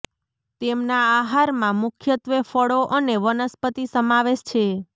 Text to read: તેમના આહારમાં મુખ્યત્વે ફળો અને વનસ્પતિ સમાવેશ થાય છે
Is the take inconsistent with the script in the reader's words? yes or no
yes